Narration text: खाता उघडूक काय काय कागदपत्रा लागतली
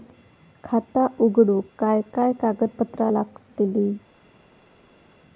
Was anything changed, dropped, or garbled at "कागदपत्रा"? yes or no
no